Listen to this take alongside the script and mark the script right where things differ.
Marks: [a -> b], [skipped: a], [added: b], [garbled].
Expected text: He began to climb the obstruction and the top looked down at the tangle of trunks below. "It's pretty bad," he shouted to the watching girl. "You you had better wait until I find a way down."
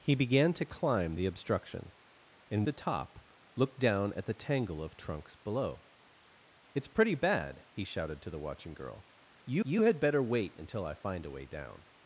He began to climb the obstruction and the top looked down at the tangle of trunks below. "It's pretty bad," he shouted to the watching girl. "You you had better wait until I find a way down."